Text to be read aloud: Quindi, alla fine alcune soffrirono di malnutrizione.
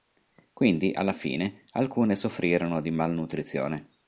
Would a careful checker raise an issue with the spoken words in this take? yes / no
no